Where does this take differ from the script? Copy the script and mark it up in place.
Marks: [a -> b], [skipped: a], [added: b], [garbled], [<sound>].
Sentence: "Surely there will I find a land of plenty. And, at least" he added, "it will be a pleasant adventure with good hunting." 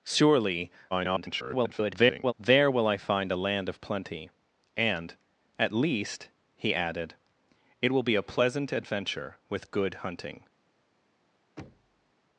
"Surely [garbled] there will I find a land of plenty. And, at least" he added, "it will be a pleasant adventure with good hunting." [thud]